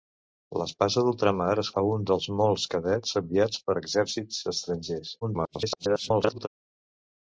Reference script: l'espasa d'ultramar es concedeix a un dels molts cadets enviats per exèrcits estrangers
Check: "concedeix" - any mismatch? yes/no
yes